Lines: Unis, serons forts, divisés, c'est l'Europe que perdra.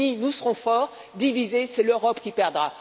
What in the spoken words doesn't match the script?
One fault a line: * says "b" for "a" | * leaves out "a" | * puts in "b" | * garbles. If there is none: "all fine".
* puts in "nous"
* says "qui" for "que"